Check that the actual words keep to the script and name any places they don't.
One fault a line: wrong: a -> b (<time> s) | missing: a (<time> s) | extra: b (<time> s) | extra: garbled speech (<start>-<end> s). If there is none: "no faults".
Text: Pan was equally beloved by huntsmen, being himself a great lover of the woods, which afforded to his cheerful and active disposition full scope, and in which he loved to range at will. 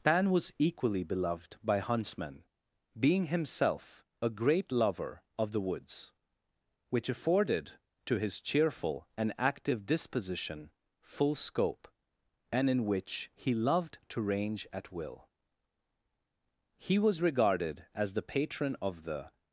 extra: He was regarded as the patron of the (16.8 s)